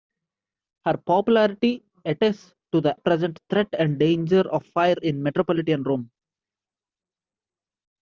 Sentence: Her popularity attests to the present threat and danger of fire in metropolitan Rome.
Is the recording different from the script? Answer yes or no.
no